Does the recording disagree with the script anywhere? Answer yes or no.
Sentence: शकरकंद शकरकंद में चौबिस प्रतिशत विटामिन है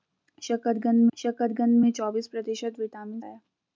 no